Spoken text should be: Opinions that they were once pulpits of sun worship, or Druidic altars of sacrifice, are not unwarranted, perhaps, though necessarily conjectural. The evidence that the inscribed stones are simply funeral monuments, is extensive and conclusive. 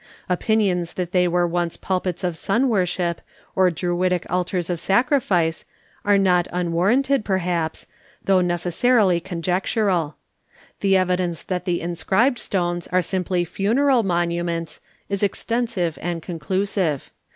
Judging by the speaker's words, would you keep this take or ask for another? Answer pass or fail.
pass